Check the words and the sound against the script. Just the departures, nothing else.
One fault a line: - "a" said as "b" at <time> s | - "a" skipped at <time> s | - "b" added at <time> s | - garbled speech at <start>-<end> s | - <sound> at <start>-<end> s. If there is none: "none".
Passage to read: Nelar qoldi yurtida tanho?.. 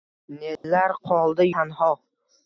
- dropout at 0.6-0.6 s
- "yurtida" skipped at 1.5 s